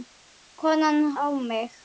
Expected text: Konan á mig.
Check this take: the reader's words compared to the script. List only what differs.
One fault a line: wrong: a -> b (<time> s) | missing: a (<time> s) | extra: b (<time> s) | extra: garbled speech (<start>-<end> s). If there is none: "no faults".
no faults